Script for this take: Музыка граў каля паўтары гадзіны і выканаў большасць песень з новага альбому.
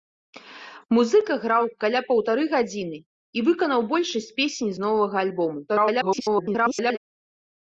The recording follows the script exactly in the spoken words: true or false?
false